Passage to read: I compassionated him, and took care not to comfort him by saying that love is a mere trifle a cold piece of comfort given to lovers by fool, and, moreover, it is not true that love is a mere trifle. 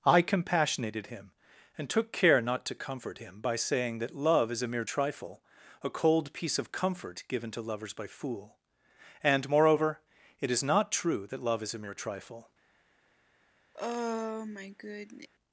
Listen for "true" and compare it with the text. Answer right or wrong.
right